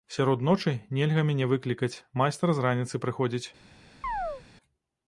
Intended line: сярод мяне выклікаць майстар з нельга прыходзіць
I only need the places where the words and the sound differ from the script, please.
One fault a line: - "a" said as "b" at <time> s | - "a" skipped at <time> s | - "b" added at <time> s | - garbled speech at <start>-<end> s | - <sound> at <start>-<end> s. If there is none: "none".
- "ночы нельга" added at 0.5 s
- "нельга" said as "раніцы" at 2.7 s
- chirp at 4.0-4.4 s